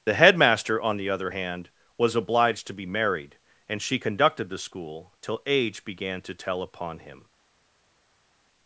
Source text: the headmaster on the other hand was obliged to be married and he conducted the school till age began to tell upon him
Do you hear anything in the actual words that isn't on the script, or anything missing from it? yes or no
yes